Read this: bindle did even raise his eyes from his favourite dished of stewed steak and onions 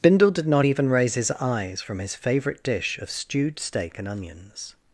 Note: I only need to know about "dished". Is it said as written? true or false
false